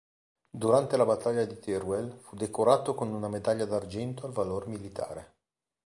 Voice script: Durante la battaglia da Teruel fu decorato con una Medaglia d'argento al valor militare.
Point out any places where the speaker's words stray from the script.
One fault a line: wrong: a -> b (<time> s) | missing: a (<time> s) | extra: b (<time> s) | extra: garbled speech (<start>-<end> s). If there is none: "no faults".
wrong: da -> di (1.4 s)